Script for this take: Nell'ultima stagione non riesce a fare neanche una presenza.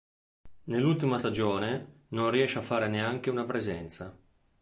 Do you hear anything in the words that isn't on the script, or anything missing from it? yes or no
no